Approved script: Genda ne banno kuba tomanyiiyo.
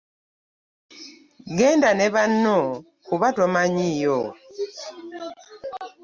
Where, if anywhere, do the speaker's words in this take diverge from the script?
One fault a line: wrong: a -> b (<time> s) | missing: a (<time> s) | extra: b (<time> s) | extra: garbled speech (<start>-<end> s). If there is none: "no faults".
no faults